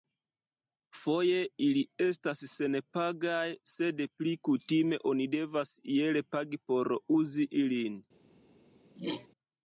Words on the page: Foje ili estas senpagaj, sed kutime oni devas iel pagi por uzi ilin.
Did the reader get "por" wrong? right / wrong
right